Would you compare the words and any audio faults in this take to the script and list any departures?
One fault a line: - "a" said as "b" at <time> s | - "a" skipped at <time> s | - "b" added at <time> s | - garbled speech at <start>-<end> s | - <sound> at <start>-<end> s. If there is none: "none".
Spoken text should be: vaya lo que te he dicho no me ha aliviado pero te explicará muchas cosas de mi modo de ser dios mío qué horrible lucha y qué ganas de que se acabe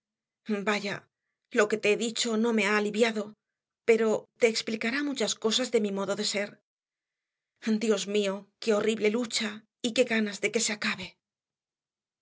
none